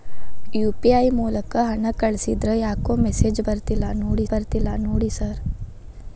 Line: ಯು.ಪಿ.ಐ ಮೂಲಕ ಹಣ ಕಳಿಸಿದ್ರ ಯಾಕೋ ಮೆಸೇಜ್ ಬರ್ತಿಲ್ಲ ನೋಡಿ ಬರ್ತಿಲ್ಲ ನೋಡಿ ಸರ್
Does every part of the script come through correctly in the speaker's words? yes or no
yes